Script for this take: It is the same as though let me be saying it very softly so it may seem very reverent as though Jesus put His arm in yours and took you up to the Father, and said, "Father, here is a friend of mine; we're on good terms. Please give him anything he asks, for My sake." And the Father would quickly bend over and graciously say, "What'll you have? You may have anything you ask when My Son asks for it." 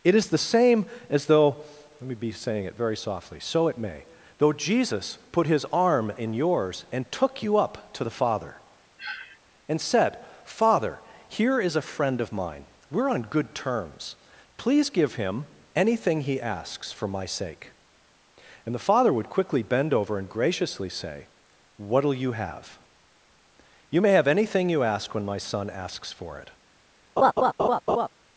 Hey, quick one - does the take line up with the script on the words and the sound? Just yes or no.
no